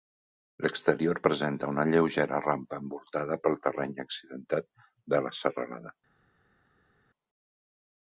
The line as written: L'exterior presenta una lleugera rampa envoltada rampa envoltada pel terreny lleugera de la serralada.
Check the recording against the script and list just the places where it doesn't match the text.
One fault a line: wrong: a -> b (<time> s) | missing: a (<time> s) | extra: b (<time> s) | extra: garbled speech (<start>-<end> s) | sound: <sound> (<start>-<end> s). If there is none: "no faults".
missing: rampa envoltada (3.4 s)
wrong: lleugera -> accidentat (4.1 s)